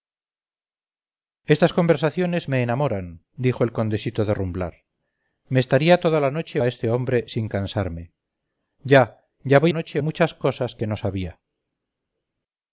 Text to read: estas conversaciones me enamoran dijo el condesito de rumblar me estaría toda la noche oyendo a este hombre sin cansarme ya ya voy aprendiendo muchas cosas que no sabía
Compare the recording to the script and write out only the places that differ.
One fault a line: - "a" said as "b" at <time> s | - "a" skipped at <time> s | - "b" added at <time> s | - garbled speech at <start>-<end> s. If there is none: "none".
- "oyendo" skipped at 6.6 s
- "aprendiendo" said as "noche" at 9.7 s